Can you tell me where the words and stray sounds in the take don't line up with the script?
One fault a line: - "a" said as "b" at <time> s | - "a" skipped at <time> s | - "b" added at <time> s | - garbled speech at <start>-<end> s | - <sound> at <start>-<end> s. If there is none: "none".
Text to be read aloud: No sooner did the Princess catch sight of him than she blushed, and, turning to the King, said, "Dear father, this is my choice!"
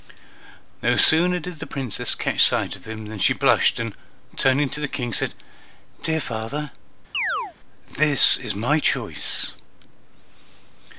- chirp at 7.1-7.5 s